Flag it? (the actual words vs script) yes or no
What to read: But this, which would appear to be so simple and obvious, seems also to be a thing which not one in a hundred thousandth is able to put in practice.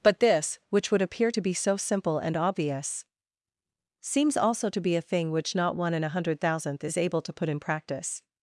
no